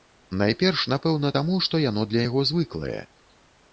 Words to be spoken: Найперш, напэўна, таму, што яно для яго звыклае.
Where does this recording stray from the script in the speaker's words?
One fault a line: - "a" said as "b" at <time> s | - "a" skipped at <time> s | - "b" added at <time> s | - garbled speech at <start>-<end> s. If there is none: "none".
none